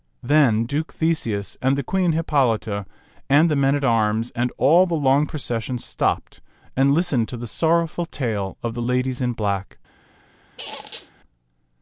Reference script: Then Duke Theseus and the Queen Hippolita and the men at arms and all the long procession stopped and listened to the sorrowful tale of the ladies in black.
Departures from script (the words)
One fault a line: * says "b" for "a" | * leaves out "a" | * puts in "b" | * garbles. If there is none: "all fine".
all fine